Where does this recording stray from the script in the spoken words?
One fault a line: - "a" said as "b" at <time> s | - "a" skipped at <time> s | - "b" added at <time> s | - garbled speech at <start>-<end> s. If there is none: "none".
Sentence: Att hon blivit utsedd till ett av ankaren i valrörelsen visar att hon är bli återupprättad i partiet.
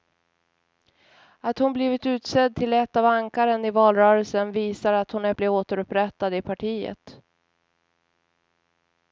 none